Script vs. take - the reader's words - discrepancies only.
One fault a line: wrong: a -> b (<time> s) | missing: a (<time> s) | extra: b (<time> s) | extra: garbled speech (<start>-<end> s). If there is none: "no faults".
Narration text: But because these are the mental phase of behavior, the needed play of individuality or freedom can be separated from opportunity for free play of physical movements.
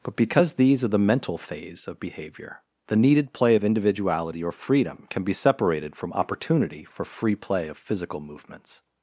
no faults